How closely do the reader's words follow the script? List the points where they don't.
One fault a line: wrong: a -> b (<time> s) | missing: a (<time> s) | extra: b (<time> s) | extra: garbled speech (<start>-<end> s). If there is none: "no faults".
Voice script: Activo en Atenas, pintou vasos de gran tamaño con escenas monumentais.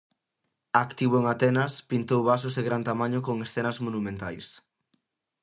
no faults